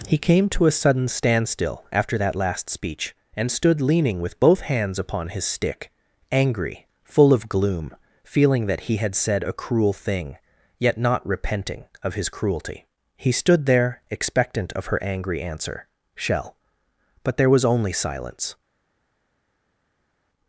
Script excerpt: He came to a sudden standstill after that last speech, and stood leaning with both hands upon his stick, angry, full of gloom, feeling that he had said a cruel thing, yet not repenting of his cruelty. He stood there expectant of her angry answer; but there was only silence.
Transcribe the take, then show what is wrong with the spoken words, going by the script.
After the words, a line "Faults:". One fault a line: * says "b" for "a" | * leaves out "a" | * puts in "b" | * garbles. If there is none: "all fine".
He came to a sudden standstill after that last speech, and stood leaning with both hands upon his stick, angry, full of gloom, feeling that he had said a cruel thing, yet not repenting of his cruelty. He stood there expectant of her angry answer; shell but there was only silence.
Faults:
* puts in "shell"